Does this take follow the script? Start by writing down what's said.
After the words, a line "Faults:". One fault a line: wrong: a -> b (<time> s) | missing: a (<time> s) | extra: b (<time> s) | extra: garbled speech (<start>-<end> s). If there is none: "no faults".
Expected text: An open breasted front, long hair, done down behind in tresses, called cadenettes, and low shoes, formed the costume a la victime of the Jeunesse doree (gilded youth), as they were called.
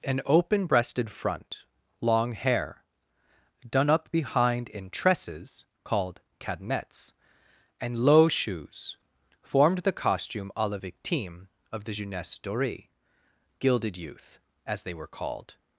An open breasted front, long hair, done up behind in tresses, called cadenettes, and low shoes, formed the costume a la victime of the Jeunesse doree (gilded youth), as they were called.
Faults:
wrong: down -> up (3.9 s)